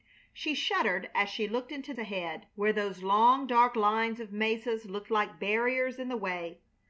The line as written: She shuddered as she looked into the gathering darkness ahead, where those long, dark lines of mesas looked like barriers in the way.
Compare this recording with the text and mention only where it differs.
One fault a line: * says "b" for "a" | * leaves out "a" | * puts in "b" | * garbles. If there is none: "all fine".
* leaves out "the gathering darkness"